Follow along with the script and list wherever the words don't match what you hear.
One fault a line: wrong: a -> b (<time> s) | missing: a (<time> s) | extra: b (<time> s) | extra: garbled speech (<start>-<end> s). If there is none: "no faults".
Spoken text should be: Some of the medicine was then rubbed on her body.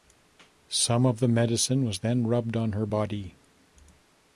no faults